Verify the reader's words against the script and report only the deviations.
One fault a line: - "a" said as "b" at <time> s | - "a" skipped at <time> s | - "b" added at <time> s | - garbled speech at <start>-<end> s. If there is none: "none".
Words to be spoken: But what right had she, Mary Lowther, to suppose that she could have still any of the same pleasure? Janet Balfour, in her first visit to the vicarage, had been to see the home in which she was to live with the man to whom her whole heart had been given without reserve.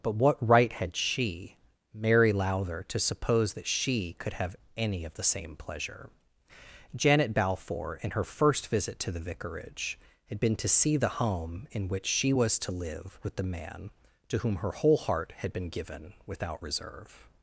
- "still" skipped at 4.5 s